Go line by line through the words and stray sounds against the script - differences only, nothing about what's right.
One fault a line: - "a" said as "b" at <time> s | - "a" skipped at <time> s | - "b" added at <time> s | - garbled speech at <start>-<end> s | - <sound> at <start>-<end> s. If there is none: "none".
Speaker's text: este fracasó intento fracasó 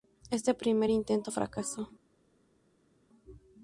- "fracasó" said as "primer" at 0.6 s